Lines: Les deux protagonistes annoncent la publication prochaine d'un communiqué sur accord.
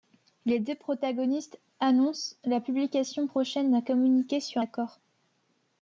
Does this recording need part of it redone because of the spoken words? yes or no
no